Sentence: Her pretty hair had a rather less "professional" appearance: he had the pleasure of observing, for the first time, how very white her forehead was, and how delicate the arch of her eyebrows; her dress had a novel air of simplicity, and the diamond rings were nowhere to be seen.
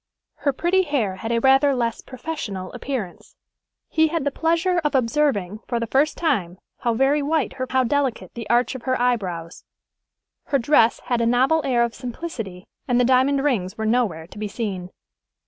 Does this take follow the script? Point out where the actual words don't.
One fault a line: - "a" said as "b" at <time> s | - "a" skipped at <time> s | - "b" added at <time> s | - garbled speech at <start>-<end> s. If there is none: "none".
- "forehead was and" skipped at 7.7 s